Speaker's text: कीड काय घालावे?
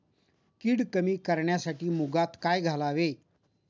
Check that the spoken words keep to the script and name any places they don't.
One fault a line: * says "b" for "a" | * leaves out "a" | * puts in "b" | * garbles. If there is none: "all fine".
* puts in "कमी करण्यासाठी मुगात"